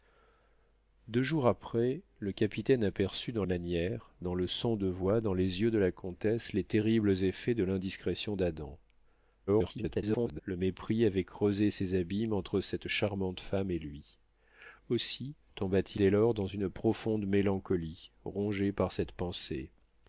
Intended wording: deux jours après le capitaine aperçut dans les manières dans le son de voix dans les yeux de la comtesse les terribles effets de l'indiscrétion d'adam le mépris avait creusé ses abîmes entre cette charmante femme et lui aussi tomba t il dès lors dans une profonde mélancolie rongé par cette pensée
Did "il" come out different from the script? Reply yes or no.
yes